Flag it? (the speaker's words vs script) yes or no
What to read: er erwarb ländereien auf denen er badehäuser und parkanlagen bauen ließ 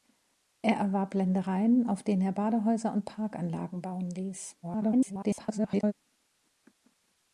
yes